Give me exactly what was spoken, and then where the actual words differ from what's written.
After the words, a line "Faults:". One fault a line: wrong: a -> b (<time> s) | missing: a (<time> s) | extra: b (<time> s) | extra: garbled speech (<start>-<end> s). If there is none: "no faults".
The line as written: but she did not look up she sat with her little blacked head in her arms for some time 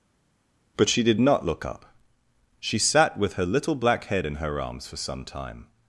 but she did not look up she sat with her little black head in her arms for some time
Faults:
wrong: blacked -> black (3.7 s)